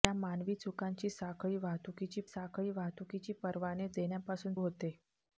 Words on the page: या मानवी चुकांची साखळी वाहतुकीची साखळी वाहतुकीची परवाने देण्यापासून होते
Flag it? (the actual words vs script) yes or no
no